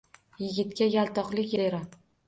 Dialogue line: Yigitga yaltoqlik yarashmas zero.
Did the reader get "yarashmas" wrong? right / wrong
wrong